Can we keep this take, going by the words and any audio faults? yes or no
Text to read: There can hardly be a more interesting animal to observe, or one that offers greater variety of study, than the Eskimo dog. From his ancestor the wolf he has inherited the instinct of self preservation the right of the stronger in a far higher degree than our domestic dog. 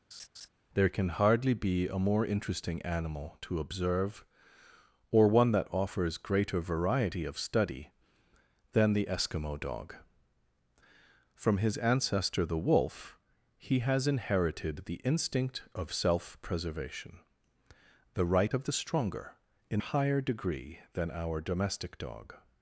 no